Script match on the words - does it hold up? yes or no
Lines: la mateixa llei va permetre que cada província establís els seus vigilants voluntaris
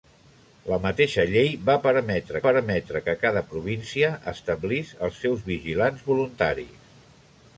no